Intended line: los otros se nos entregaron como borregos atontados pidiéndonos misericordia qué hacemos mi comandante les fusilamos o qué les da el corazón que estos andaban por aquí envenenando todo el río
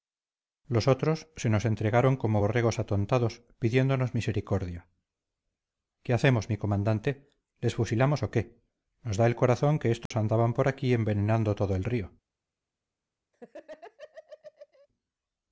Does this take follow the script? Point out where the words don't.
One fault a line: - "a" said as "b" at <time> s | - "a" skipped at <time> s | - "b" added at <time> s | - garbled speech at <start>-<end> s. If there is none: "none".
- "les" said as "nos" at 9.0 s